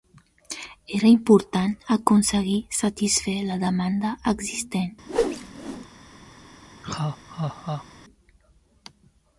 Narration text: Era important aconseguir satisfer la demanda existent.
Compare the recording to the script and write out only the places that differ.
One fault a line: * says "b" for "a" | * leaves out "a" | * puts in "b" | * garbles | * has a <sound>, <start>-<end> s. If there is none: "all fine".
* has a whoosh, 5.1-5.9 s
* has a laugh, 6.8-7.9 s